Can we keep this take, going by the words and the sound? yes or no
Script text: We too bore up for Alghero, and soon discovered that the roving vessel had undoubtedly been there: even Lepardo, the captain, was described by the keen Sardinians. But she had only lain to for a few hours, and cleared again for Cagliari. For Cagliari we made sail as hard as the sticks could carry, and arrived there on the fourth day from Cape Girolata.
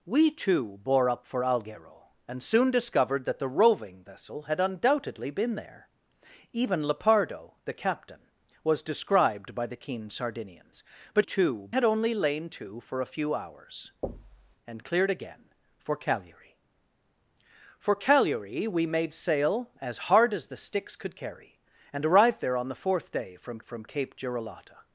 no